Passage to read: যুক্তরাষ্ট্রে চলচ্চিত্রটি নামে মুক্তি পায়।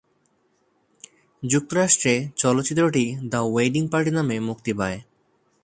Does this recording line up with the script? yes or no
no